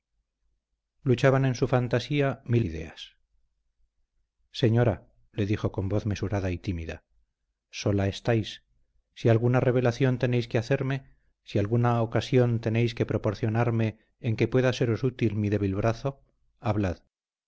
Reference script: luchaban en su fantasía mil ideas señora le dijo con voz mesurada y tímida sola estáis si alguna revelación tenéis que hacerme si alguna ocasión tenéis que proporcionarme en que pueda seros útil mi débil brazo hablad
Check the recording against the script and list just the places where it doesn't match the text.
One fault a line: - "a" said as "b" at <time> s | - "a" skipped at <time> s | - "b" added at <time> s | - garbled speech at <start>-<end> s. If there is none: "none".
none